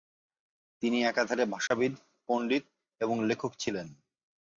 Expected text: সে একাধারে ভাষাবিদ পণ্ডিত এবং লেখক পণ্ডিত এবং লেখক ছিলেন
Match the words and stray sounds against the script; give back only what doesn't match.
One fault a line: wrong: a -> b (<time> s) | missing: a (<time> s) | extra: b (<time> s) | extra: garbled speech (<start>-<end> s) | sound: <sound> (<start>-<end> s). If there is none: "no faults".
wrong: সে -> তিনি (0.8 s)
sound: dropout (1.7-1.7 s)
missing: পণ্ডিত এবং লেখক (3.5 s)